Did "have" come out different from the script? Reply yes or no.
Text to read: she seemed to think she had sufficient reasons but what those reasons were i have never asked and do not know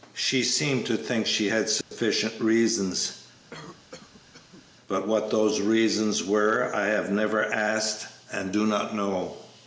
no